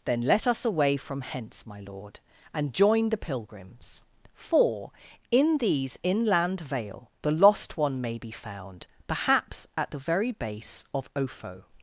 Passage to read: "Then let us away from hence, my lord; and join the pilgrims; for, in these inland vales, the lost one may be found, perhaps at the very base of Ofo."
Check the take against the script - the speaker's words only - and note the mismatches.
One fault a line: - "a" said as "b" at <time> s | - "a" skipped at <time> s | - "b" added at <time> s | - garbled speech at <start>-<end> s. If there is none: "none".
- "vales" said as "vale" at 6.6 s